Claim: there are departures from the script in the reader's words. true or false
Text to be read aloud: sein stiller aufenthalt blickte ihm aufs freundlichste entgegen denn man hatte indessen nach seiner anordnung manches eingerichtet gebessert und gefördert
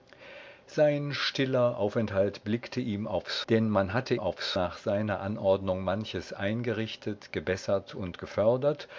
true